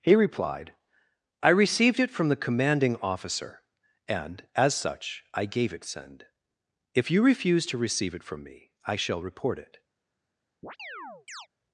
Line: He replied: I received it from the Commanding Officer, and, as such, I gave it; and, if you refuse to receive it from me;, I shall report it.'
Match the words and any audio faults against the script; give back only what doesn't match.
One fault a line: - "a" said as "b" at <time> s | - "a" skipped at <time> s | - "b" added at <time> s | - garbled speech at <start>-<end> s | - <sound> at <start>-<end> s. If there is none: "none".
- "and" said as "send" at 5.8 s
- chirp at 10.6-11.5 s